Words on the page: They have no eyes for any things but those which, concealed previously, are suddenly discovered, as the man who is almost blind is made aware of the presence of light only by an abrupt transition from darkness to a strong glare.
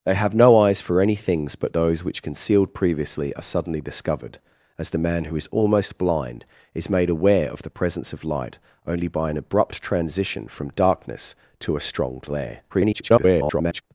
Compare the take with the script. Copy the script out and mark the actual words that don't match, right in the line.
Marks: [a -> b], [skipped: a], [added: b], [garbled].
They have no eyes for any things but those which, concealed previously, are suddenly discovered, as the man who is almost blind is made aware of the presence of light only by an abrupt transition from darkness to a strong glare. [garbled]